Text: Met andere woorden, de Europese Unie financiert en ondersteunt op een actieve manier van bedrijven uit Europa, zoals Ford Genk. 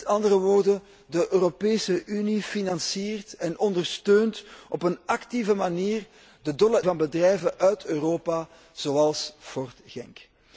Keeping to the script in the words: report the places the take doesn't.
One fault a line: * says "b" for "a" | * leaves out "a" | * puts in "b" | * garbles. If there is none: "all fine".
all fine